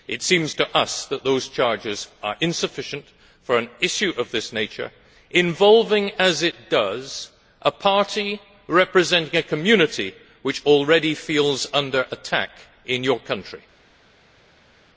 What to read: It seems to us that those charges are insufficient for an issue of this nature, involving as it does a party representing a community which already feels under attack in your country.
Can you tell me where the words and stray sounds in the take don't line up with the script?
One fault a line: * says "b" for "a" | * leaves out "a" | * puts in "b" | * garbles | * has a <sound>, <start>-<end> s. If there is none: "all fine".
all fine